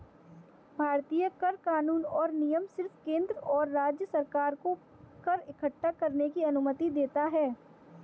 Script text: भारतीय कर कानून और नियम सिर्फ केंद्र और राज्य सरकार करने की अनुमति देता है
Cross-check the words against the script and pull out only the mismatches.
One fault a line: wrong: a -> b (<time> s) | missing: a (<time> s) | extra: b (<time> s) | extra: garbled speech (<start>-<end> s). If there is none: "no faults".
extra: को कर इक्कठा (4.6 s)